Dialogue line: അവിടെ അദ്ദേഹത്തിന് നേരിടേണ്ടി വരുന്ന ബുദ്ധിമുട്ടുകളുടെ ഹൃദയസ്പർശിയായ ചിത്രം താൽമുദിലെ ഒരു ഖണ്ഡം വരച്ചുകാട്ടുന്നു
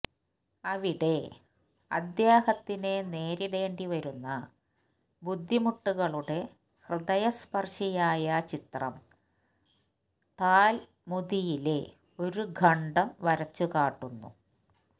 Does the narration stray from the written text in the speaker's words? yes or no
no